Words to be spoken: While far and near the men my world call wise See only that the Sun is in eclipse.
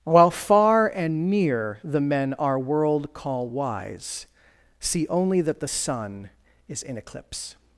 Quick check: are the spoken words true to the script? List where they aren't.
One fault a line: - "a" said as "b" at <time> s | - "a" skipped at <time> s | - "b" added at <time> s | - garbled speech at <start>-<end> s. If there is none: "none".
- "my" said as "our" at 2.4 s